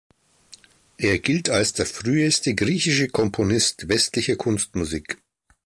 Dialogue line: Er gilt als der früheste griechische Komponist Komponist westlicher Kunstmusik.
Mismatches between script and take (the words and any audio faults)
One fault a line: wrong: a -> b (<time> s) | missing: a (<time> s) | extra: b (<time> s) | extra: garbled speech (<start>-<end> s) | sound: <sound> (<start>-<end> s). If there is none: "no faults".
missing: Komponist (3.9 s)